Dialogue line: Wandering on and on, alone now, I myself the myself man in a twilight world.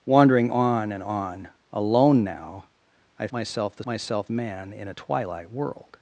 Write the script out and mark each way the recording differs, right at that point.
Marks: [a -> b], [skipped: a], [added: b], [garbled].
Wandering on and on, alone now, I myself the myself man in a twilight world.